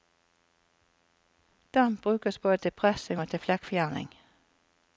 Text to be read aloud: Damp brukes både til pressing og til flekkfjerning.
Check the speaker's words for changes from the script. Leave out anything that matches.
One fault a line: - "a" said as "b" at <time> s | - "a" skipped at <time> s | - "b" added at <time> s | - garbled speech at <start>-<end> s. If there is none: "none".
none